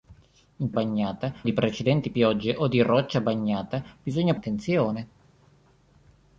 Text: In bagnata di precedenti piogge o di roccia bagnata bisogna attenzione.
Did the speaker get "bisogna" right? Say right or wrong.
right